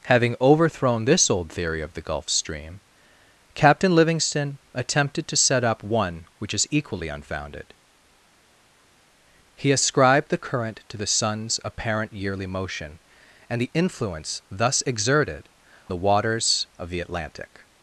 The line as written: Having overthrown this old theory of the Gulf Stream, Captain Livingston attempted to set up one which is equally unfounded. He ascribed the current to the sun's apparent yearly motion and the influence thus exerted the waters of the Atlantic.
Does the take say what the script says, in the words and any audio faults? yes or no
yes